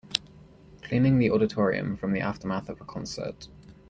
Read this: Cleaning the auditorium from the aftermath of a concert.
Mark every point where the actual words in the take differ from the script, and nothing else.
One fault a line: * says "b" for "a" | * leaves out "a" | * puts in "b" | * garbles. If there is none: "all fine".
all fine